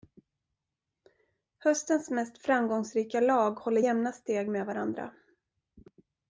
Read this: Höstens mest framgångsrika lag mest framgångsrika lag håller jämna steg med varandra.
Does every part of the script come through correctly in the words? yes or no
no